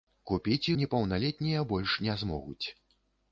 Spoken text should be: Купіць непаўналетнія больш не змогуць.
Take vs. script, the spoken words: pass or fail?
pass